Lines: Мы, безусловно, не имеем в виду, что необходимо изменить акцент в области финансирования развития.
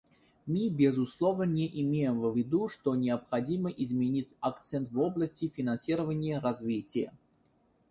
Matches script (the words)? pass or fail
pass